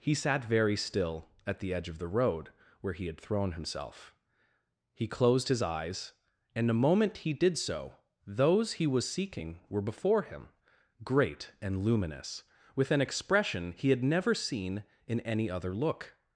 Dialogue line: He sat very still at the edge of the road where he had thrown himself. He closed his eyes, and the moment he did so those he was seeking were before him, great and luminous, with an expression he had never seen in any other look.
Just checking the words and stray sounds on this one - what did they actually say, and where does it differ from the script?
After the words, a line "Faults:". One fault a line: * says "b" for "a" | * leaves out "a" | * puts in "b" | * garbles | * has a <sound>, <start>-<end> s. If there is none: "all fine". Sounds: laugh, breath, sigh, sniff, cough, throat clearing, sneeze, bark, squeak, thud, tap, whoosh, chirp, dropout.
He sat very still at the edge of the road where he had thrown himself. He closed his eyes, and the moment he did so those he was seeking were before him, great and luminous, with an expression he had never seen in any other look.
Faults:
all fine